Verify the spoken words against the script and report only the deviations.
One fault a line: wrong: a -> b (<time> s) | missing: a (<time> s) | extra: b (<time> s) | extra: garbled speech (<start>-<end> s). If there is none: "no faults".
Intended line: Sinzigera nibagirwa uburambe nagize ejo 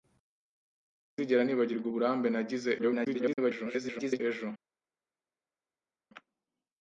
extra: garbled speech (2.8-4.2 s)